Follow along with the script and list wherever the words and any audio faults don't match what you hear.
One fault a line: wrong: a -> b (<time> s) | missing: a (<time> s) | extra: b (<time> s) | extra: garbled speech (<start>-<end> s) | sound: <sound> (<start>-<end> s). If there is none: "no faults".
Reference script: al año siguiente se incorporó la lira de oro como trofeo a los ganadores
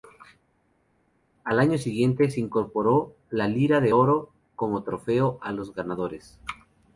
no faults